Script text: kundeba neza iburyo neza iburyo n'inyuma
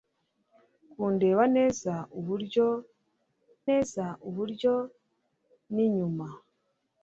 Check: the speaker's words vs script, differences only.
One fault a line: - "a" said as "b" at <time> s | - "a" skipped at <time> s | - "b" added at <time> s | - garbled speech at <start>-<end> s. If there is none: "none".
none